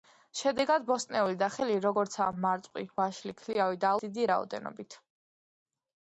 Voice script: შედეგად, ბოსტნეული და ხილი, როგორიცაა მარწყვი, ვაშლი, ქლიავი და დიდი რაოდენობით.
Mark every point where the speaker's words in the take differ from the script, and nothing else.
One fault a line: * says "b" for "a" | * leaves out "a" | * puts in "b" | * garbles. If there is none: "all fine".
all fine